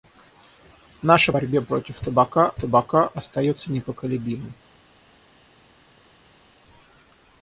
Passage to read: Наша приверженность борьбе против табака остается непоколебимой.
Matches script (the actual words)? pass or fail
fail